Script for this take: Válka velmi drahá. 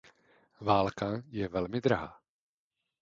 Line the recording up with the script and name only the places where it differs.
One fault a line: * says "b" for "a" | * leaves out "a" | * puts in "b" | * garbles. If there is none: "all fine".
* puts in "je"